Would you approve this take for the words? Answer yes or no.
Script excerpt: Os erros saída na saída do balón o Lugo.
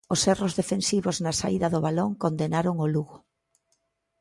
no